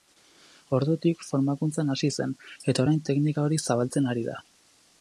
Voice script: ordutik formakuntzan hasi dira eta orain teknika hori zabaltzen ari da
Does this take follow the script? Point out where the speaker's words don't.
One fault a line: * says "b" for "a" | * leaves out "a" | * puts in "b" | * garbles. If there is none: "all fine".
* says "zen" for "dira"